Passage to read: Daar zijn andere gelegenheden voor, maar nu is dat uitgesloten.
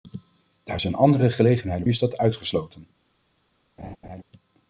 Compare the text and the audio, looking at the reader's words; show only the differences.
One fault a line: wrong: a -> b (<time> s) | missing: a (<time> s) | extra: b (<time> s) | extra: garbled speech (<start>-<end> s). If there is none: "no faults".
missing: voor maar nu (1.9 s)